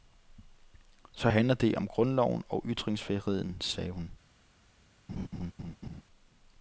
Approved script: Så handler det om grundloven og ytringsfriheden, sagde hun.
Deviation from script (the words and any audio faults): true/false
true